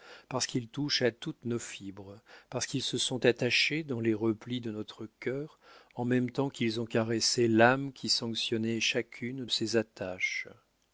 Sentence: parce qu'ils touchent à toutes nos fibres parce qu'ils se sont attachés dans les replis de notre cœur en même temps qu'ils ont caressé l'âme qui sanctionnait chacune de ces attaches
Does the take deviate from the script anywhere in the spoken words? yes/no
yes